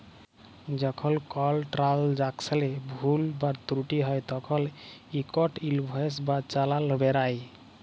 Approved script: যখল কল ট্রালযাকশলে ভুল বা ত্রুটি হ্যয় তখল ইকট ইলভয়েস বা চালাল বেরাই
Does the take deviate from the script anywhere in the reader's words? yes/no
no